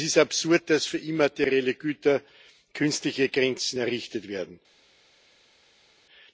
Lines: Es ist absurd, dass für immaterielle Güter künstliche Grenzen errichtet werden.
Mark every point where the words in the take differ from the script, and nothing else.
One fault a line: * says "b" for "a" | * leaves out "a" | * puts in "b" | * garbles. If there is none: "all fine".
all fine